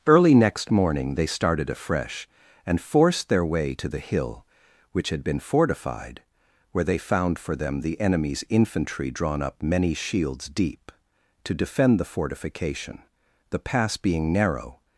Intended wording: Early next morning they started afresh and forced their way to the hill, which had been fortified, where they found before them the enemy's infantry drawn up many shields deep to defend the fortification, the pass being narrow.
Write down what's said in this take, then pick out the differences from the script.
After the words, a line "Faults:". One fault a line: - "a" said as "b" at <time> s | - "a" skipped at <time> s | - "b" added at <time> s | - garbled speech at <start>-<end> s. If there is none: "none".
Early next morning they started afresh and forced their way to the hill, which had been fortified, where they found for them the enemy's infantry drawn up many shields deep to defend the fortification, the pass being narrow.
Faults:
- "before" said as "for" at 7.4 s